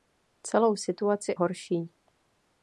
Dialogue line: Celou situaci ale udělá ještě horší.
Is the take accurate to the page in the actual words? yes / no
no